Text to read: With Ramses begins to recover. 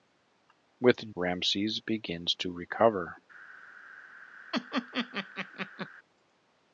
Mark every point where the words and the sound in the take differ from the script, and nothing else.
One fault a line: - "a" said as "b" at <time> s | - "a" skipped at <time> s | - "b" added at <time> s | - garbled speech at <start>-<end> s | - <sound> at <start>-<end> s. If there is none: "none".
- laugh at 4.5-5.9 s